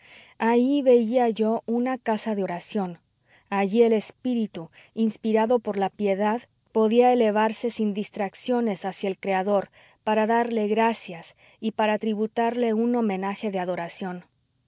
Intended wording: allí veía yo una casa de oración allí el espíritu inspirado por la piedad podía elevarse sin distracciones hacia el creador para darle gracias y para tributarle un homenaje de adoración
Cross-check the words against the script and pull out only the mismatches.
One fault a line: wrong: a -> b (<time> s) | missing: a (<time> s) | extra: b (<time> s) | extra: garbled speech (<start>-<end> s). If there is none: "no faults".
no faults